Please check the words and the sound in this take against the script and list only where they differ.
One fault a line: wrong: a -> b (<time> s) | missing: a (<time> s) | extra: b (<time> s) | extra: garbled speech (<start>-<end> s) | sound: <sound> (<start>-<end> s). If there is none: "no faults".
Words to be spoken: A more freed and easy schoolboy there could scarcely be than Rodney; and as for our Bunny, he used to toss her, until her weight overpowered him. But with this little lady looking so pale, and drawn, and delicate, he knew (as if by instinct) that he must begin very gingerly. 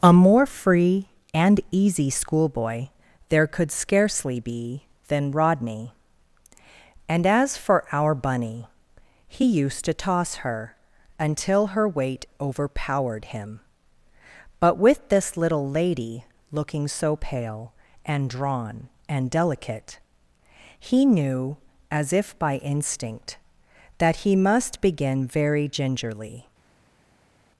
wrong: freed -> free (0.5 s)